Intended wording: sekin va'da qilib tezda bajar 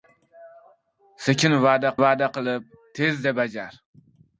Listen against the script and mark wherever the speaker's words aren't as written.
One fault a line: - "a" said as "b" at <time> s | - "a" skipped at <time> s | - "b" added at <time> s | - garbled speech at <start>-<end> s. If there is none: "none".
- "va'da" added at 2.0 s